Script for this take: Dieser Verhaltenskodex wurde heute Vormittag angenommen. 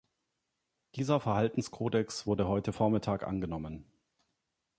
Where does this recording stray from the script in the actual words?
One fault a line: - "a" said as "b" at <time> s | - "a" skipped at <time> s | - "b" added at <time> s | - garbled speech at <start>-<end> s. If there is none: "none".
none